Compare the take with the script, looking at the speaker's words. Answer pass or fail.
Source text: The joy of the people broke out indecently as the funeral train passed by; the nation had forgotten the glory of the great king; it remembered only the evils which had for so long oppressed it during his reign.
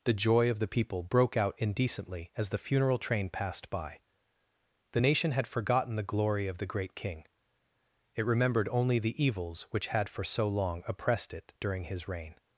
pass